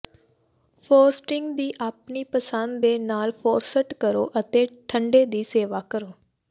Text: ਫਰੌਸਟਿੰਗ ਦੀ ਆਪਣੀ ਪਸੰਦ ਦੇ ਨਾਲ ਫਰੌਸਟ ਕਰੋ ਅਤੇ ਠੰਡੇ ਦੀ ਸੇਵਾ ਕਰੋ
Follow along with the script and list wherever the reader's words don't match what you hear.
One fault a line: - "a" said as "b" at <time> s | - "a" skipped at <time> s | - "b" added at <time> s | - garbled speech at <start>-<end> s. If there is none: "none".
none